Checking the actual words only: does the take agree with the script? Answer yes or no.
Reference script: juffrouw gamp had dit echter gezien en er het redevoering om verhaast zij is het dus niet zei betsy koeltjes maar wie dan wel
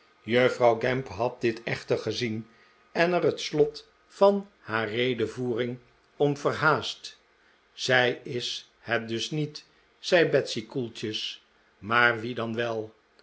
no